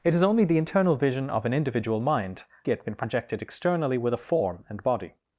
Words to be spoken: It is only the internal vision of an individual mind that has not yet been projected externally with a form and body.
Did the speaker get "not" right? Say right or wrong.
wrong